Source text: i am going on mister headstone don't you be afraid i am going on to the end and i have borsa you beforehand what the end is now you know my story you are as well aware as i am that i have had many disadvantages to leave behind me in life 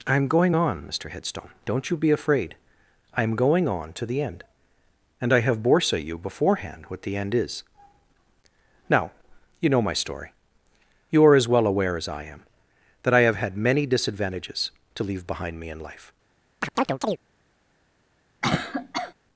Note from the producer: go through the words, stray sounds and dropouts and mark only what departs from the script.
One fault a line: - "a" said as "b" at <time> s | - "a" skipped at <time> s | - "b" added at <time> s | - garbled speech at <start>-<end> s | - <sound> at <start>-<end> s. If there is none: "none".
- chirp at 16.6-17.2 s
- cough at 18.4-19.1 s